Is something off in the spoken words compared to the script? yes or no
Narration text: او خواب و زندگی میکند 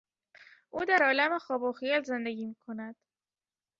yes